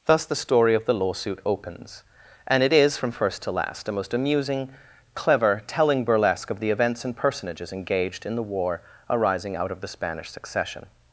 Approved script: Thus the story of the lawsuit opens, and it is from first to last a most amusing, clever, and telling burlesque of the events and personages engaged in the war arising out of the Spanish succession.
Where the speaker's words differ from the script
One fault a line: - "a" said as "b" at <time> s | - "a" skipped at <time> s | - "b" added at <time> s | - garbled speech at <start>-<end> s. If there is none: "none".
- "and" skipped at 5.6 s